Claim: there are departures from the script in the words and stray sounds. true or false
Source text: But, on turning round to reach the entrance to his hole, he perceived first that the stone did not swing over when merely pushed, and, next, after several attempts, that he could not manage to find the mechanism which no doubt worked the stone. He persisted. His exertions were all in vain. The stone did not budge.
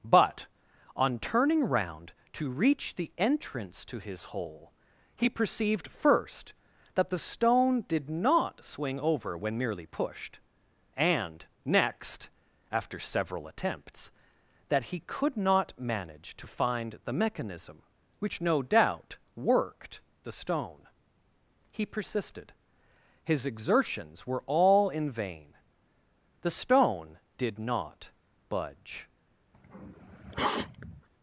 true